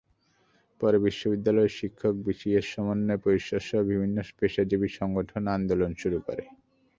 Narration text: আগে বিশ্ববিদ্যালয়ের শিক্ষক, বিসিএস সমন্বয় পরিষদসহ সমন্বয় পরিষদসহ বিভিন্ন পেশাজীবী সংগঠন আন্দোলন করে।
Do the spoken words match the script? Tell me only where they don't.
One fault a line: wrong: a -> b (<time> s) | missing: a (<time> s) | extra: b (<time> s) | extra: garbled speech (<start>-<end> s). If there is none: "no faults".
wrong: আগে -> পরে (0.8 s)
missing: সমন্বয় পরিষদসহ (3.8 s)
extra: শুরু (6.0 s)